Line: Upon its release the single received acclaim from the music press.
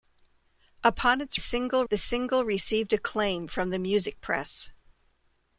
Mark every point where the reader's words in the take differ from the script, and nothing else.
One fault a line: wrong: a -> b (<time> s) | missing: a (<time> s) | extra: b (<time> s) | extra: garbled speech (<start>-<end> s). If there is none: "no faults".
wrong: release -> single (1.4 s)